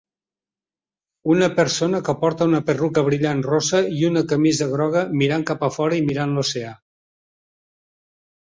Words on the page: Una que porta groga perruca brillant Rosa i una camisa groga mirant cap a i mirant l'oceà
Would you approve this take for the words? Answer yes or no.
no